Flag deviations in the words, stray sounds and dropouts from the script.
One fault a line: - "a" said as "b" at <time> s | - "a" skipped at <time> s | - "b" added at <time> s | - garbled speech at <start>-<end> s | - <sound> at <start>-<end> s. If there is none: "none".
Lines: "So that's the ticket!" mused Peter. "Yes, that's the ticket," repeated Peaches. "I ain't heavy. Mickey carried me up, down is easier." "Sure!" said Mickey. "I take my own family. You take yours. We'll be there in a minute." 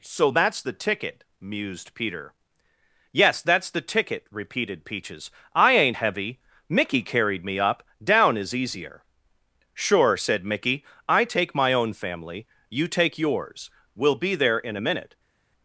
none